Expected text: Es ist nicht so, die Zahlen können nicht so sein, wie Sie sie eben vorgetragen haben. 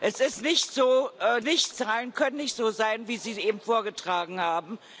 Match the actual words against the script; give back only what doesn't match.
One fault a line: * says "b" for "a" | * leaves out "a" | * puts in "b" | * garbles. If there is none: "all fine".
* says "nicht" for "die"